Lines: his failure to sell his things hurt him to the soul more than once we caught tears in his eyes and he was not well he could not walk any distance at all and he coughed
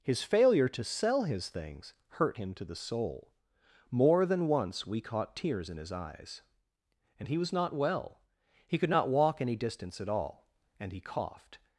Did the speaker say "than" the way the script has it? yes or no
yes